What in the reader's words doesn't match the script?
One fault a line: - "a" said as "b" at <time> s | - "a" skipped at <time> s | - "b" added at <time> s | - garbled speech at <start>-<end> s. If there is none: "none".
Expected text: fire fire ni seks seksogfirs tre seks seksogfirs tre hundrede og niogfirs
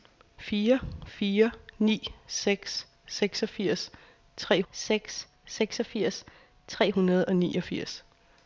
none